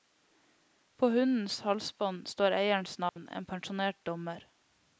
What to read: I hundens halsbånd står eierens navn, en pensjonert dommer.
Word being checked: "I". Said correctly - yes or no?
no